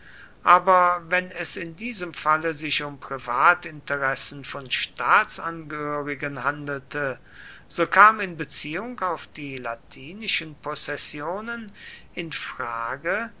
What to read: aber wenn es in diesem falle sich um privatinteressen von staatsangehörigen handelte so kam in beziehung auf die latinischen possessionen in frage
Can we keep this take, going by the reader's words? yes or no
yes